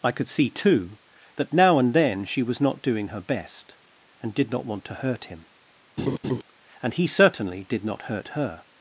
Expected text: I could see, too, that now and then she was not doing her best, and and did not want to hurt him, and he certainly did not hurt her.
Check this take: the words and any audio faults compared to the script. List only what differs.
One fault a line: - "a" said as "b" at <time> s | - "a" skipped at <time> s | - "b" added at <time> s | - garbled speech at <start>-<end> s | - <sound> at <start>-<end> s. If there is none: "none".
- "and" skipped at 4.3 s
- laugh at 6.0-6.4 s